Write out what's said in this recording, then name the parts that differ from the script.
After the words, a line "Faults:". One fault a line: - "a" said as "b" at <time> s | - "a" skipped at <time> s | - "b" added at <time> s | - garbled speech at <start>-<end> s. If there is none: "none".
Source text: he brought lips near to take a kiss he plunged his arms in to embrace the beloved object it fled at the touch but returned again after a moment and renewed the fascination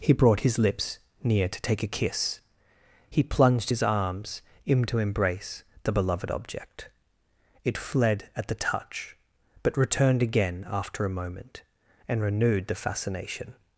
he brought his lips near to take a kiss he plunged his arms in to embrace the beloved object it fled at the touch but returned again after a moment and renewed the fascination
Faults:
- "his" added at 0.4 s